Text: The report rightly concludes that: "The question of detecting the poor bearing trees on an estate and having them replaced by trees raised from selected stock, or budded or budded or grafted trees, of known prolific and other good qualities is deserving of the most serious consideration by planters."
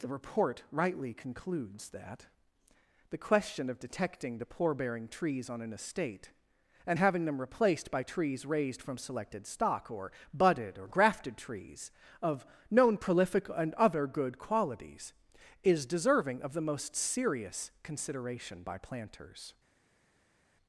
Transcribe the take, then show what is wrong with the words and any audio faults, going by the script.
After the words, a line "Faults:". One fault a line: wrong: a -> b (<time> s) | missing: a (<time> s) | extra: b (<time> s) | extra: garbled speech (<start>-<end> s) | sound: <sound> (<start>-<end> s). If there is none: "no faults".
The report rightly concludes that: "The question of detecting the poor bearing trees on an estate and having them replaced by trees raised from selected stock, or budded or grafted trees, of known prolific and other good qualities is deserving of the most serious consideration by planters."
Faults:
missing: budded or (10.9 s)